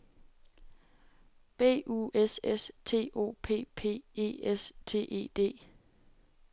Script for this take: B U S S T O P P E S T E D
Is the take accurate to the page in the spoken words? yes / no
yes